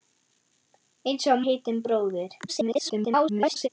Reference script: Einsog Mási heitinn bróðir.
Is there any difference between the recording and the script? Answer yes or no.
yes